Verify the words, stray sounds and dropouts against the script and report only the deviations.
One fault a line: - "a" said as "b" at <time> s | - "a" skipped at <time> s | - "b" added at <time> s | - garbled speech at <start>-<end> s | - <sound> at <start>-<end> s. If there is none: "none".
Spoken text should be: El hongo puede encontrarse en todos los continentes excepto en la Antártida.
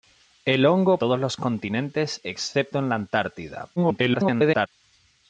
- "puede encontrarse en" skipped at 1.0 s
- garbled speech at 3.8-4.7 s